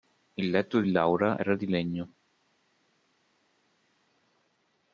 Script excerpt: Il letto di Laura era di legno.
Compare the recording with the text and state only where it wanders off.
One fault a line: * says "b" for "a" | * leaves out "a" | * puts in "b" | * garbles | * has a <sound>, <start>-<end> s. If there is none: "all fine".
all fine